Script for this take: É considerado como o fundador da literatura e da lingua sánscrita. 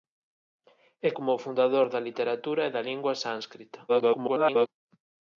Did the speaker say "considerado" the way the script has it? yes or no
no